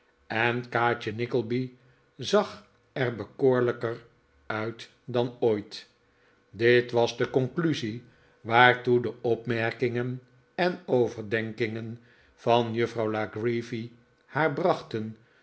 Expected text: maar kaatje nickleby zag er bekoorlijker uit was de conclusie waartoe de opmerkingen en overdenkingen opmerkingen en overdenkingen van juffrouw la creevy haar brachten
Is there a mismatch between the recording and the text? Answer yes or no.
yes